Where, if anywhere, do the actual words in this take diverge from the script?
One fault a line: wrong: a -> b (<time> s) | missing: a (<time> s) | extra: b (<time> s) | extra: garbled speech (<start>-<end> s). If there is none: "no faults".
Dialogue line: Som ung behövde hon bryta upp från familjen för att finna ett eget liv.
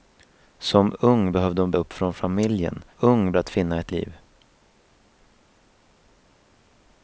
missing: bryta (1.7 s)
wrong: för -> ung (3.0 s)
missing: eget (3.9 s)